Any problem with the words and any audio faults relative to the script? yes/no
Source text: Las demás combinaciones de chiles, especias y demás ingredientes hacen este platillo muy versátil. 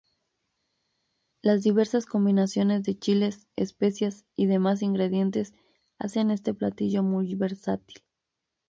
yes